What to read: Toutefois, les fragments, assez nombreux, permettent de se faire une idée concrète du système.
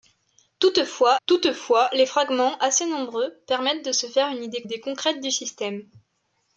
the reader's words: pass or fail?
fail